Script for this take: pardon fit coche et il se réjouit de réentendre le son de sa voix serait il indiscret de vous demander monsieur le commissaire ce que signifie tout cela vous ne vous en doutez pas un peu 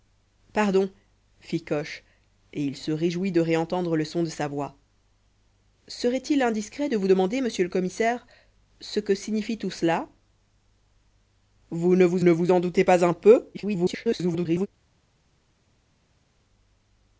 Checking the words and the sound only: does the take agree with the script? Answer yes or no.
no